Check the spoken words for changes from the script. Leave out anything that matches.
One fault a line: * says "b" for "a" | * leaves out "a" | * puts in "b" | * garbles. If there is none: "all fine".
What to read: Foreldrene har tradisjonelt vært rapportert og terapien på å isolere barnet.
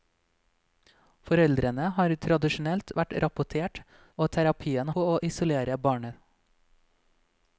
all fine